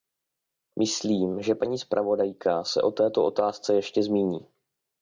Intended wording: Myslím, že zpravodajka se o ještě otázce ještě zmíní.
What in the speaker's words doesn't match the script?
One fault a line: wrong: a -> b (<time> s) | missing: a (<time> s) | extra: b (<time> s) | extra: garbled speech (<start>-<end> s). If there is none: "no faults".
extra: paní (1.5 s)
wrong: ještě -> této (2.9 s)